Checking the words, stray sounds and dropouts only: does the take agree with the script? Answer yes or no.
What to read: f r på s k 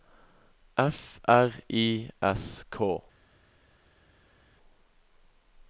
no